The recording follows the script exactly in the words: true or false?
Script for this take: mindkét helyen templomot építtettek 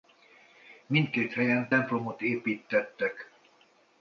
true